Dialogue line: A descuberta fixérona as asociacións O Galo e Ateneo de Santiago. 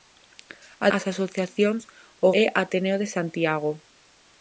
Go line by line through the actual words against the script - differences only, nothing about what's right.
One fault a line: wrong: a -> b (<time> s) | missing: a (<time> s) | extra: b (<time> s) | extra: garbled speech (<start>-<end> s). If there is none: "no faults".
missing: descuberta fixérona (0.9 s)
missing: Galo (2.3 s)